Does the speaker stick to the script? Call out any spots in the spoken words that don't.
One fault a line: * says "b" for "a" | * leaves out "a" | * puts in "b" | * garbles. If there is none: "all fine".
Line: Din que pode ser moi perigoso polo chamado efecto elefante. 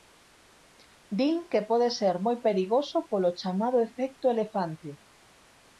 all fine